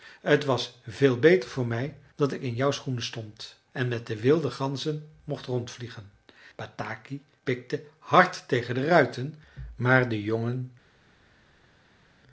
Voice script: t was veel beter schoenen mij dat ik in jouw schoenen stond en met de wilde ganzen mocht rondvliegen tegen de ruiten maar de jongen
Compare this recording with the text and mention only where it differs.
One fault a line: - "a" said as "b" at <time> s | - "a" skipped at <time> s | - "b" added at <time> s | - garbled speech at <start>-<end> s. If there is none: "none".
- "schoenen" said as "voor" at 1.5 s
- "bataki pikte hard" added at 6.5 s